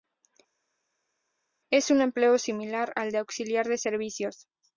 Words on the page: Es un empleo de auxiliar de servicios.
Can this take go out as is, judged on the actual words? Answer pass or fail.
fail